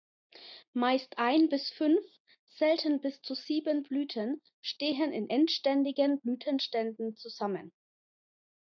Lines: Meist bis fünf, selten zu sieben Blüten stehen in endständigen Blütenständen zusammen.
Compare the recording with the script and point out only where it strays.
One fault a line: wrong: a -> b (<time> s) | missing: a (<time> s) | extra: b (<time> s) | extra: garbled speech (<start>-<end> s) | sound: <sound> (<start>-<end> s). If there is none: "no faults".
extra: ein (1.2 s)
extra: bis (3.0 s)